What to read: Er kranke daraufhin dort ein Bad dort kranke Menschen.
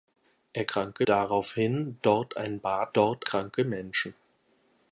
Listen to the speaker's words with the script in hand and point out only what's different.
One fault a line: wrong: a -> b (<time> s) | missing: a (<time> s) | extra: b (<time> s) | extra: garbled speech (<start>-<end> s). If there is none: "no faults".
no faults